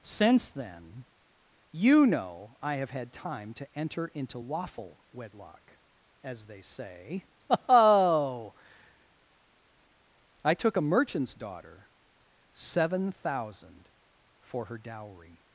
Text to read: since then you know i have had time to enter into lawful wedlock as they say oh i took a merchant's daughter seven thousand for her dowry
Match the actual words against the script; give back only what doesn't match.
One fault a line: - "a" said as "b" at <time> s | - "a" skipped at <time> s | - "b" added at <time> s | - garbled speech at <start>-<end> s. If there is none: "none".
none